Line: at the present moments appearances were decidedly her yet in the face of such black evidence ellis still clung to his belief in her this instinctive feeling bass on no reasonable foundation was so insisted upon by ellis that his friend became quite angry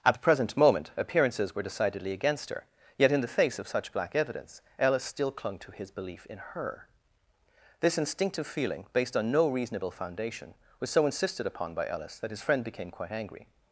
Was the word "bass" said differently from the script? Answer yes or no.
yes